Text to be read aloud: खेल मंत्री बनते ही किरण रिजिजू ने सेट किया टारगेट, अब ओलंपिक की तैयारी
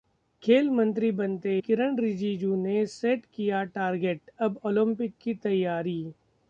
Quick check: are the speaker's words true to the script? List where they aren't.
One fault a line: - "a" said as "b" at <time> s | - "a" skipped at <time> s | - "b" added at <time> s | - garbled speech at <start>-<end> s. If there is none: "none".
- "ही" skipped at 1.5 s